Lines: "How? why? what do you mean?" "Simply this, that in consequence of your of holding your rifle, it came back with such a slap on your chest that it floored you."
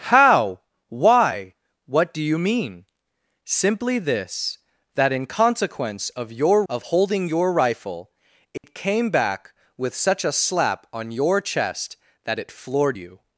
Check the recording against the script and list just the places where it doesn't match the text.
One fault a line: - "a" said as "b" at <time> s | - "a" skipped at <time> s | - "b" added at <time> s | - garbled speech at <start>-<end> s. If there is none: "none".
none